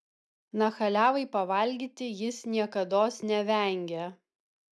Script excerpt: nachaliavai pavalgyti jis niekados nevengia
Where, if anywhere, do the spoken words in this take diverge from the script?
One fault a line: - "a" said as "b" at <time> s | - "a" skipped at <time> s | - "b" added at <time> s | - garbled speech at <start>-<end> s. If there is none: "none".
none